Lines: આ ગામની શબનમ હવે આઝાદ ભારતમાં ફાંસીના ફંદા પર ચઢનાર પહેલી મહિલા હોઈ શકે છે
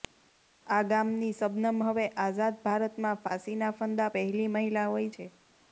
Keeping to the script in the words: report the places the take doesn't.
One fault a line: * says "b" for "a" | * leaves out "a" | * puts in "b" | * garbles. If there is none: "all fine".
* leaves out "પર ચઢનાર"
* leaves out "શકે"